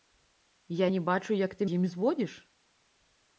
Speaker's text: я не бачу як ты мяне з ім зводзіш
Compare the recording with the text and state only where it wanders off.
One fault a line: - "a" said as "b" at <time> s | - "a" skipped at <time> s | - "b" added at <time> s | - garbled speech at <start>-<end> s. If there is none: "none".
- "мяне" skipped at 1.7 s